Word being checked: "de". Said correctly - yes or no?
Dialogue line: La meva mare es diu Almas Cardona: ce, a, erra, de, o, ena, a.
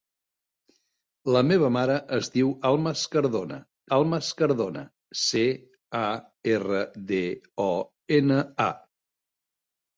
yes